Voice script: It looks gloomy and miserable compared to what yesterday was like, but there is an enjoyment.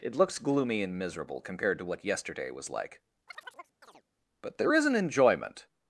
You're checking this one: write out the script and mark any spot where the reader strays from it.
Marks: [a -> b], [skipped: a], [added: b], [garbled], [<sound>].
It looks gloomy and miserable compared to what yesterday was like, [chirp] but there is an enjoyment.